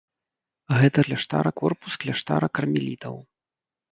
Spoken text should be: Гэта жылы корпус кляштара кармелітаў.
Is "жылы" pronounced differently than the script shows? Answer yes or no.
yes